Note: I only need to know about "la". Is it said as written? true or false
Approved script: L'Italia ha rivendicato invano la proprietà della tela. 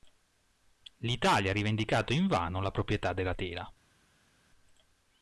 true